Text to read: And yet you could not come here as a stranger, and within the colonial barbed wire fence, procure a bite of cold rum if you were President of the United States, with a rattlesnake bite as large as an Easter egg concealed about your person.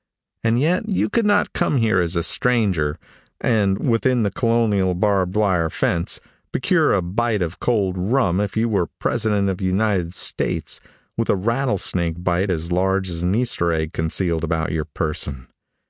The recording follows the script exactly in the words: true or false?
true